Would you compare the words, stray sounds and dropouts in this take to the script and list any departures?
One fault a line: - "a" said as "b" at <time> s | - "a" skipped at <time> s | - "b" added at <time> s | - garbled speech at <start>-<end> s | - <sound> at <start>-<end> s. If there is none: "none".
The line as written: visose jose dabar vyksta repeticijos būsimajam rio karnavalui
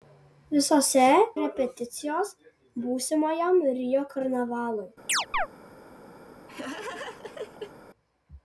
- "jose dabar vyksta" skipped at 1.0 s
- chirp at 5.1-5.5 s
- laugh at 6.5-7.7 s